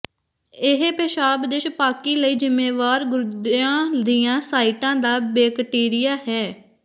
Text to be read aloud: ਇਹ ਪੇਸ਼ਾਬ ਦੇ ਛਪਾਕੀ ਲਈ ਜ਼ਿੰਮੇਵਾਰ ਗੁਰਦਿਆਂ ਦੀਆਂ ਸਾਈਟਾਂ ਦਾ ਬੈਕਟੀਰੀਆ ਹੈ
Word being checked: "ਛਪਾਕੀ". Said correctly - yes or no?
yes